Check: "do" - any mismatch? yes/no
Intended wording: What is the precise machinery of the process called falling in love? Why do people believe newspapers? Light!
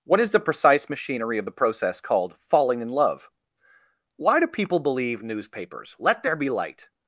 no